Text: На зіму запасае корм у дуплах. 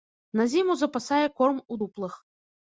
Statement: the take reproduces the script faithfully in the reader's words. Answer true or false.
true